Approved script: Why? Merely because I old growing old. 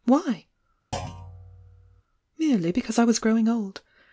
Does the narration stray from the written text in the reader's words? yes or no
yes